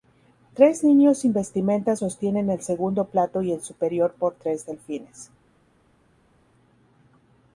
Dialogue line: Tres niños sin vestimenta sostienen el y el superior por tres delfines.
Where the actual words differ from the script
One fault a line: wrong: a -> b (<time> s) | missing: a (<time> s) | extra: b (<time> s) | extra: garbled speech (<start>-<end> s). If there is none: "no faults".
extra: segundo plato (2.6 s)